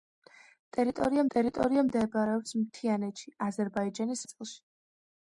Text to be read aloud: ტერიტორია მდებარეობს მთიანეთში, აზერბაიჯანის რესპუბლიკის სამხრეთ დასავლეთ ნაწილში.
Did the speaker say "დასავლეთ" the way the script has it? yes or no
no